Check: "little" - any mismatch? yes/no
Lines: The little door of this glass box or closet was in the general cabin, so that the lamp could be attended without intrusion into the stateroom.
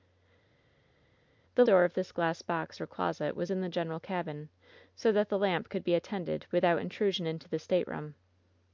yes